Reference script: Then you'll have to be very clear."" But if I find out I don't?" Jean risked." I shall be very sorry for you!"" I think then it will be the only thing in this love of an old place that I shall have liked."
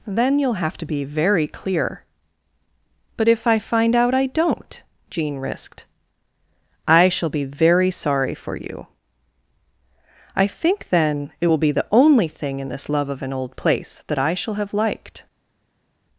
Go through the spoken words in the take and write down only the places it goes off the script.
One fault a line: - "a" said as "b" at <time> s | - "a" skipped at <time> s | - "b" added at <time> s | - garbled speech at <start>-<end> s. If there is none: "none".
none